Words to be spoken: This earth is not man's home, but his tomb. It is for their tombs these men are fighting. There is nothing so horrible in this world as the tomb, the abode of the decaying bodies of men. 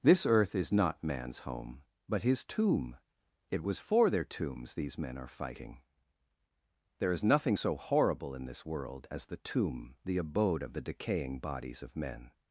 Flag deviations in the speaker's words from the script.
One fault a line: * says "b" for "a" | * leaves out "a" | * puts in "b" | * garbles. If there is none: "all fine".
* says "was" for "is"